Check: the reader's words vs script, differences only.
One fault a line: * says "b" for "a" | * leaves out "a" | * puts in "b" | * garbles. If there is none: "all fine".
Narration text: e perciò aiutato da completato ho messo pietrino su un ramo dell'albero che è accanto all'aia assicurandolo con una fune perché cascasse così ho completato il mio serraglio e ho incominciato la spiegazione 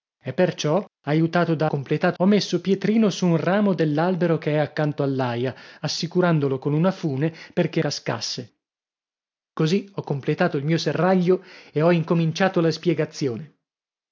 all fine